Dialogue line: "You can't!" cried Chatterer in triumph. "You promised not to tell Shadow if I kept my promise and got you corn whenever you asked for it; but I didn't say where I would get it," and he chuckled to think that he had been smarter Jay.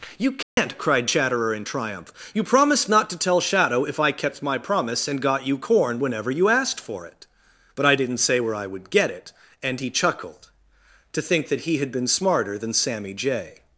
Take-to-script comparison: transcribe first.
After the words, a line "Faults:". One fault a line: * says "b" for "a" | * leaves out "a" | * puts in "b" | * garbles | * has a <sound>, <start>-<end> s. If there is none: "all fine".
"You can't!" cried Chatterer in triumph. "You promised not to tell Shadow if I kept my promise and got you corn whenever you asked for it; but I didn't say where I would get it," and he chuckled to think that he had been smarter than Sammy Jay.
Faults:
* has a dropout, 0.4-0.6 s
* puts in "than Sammy"